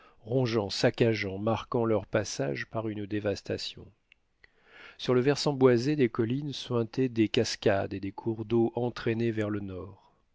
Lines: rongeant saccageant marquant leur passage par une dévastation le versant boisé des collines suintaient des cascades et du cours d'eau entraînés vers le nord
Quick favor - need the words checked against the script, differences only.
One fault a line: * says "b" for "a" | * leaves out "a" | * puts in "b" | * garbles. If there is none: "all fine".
* puts in "sur"
* says "des" for "du"